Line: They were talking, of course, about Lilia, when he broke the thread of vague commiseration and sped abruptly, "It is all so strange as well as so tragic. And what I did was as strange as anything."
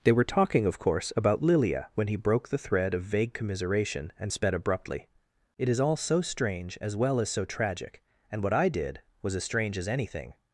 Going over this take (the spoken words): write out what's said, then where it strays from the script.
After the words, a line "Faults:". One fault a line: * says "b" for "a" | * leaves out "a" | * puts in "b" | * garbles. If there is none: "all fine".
They were talking, of course, about Lilia, when he broke the thread of vague commiseration and sped abruptly, "It is all so strange as well as so tragic. And what I did was as strange as anything."
Faults:
all fine